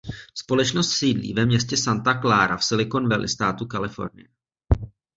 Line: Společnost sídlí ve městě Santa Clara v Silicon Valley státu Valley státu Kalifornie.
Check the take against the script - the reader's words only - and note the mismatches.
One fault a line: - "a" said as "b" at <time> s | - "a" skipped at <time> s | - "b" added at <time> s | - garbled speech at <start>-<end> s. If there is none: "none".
- "Valley státu" skipped at 3.7 s